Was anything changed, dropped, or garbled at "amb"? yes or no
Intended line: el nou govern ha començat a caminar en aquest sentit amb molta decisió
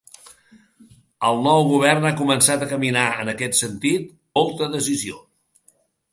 yes